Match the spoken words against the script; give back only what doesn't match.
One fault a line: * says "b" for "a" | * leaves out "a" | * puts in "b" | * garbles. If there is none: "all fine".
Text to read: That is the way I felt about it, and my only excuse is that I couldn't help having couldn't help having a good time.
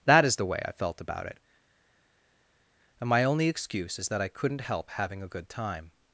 * leaves out "couldn't help having"